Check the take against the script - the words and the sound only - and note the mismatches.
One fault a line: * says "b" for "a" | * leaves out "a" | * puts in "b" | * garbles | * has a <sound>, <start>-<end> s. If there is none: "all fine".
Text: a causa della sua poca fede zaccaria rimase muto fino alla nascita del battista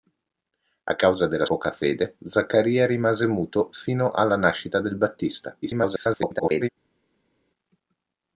* leaves out "sua"
* garbles